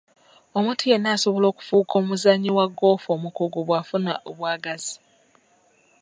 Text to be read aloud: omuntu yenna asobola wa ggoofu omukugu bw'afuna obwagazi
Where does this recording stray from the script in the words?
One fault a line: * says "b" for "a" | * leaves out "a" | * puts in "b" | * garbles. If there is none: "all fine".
* puts in "okufuuka omuzannyi"